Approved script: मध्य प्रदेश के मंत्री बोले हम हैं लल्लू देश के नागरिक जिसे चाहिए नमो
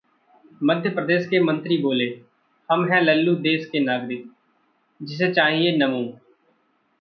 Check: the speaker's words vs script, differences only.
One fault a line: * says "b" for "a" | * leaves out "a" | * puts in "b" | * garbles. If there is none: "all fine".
all fine